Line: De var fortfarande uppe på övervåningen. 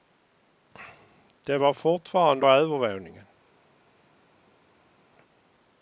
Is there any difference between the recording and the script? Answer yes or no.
yes